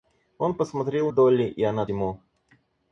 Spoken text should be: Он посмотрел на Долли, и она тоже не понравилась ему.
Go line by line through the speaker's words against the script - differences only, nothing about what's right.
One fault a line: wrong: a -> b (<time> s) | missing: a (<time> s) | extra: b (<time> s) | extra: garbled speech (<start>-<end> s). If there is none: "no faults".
missing: на (1.1 s)
missing: тоже не понравилась (1.8 s)